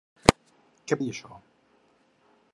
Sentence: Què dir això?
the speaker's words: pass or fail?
pass